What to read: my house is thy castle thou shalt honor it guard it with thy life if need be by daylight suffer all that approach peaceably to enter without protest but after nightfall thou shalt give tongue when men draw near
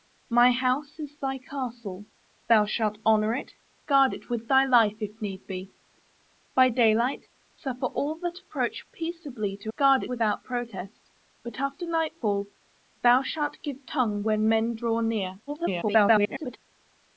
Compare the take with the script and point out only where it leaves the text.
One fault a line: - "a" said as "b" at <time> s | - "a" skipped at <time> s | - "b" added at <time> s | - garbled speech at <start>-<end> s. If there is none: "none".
- "enter" said as "guard" at 9.8 s
- garbled speech at 15.5-16.6 s